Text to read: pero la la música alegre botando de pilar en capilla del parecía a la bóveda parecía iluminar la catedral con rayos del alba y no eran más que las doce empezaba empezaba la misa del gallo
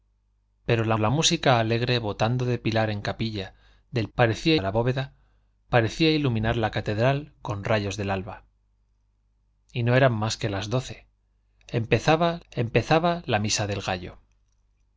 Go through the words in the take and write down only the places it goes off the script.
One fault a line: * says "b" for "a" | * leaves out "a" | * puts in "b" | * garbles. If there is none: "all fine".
all fine